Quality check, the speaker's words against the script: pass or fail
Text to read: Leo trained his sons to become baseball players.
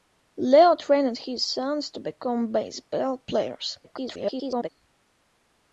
fail